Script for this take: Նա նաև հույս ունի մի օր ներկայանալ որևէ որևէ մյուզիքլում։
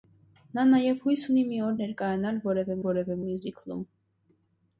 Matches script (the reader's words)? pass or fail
pass